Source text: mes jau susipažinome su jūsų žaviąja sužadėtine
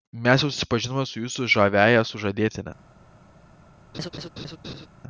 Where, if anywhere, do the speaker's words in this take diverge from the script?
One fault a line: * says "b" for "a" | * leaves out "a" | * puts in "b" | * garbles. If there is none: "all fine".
all fine